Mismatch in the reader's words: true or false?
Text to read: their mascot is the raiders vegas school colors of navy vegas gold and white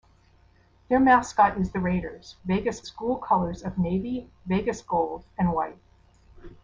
false